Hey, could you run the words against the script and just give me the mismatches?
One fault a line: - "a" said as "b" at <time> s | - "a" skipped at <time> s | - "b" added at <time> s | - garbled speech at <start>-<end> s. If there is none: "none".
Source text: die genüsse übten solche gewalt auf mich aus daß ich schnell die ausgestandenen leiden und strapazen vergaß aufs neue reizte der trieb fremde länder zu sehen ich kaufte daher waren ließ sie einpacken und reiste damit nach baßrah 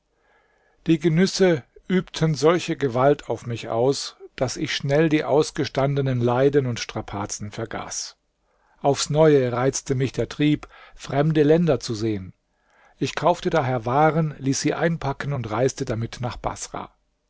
- "mich" added at 9.9 s